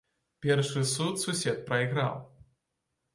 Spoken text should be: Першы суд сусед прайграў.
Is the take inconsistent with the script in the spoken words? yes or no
no